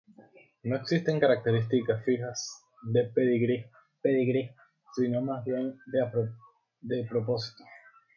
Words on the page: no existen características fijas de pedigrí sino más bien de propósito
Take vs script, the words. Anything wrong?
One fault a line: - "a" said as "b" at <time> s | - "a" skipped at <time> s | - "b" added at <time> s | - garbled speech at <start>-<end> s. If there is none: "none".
- "pedigrí" added at 4.0 s